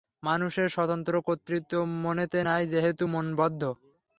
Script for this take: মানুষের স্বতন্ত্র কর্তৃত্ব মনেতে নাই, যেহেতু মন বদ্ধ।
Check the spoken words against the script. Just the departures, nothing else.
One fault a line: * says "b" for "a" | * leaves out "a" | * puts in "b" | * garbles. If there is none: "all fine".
all fine